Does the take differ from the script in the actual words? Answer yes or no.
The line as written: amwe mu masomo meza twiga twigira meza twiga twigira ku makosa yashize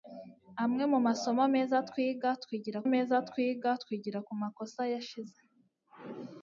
no